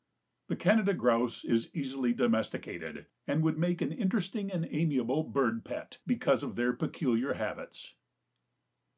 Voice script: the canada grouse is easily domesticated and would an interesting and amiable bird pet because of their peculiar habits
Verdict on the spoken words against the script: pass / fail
fail